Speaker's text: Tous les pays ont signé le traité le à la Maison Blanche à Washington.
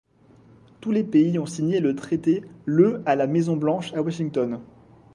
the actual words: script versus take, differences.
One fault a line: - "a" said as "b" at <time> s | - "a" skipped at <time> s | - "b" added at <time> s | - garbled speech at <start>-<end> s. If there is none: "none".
none